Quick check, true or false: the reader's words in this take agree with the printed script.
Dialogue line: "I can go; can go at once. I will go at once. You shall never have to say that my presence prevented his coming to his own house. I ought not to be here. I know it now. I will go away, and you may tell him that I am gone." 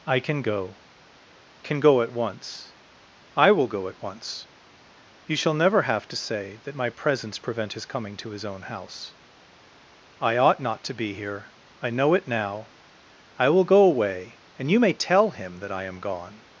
false